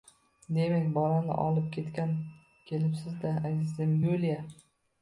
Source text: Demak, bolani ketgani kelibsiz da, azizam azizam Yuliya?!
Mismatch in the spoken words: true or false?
true